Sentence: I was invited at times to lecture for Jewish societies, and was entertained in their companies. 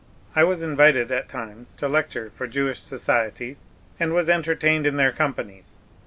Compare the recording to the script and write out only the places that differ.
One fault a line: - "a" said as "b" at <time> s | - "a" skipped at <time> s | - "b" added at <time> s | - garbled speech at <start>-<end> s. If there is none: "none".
none